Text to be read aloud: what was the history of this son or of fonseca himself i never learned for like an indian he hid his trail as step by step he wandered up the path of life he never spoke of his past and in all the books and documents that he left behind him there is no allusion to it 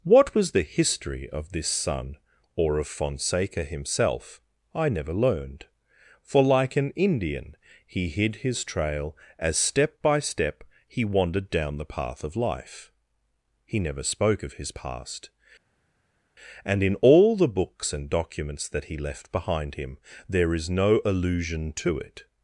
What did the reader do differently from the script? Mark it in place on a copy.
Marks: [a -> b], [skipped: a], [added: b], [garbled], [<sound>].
what was the history of this son or of fonseca himself i never learned for like an indian he hid his trail as step by step he wandered [up -> down] the path of life he never spoke of his past and in all the books and documents that he left behind him there is no allusion to it